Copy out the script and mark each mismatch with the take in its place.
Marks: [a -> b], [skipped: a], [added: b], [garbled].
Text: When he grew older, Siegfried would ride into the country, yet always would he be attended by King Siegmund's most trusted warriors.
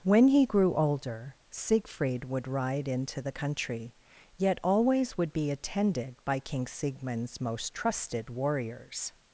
When he grew older, Siegfried would ride into the country, yet always would [skipped: he] be attended by King Siegmund's most trusted warriors.